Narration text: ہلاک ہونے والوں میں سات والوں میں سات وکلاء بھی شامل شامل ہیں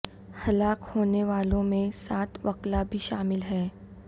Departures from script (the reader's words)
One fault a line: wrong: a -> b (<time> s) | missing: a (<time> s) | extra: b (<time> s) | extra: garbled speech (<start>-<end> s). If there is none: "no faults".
missing: والوں میں سات (2.4 s)
missing: شامل (3.4 s)